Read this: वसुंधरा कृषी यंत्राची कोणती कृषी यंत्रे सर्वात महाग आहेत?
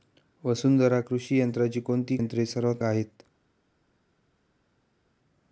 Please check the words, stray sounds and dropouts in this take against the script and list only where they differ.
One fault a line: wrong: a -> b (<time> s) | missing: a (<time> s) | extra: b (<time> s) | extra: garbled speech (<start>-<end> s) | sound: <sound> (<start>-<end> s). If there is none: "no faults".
missing: कृषी (2.2 s)
missing: महाग (2.8 s)